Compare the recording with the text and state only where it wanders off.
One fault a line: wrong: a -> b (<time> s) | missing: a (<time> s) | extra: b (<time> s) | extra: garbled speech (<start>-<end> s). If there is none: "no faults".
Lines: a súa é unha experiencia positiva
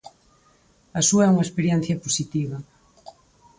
no faults